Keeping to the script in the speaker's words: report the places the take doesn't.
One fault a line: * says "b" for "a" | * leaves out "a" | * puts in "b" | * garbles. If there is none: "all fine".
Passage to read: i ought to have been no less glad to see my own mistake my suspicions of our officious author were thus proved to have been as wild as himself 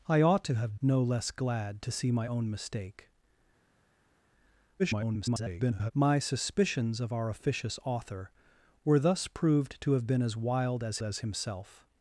* leaves out "been"
* garbles
* puts in "as"